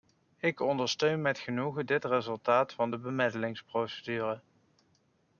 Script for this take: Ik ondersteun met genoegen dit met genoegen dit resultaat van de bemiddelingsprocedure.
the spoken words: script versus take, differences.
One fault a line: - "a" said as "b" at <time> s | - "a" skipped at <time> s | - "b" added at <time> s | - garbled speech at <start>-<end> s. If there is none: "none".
- "met genoegen dit" skipped at 2.0 s